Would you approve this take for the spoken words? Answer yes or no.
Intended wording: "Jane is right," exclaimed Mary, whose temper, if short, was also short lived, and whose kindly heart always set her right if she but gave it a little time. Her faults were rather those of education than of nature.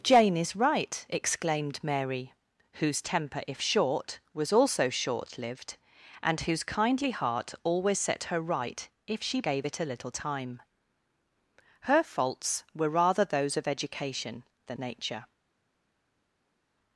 no